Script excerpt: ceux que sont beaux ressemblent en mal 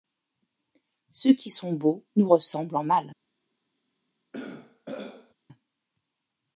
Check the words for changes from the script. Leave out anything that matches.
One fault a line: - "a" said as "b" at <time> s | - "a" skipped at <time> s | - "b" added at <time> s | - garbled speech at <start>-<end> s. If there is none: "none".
- "que" said as "qui" at 1.3 s
- "nous" added at 2.1 s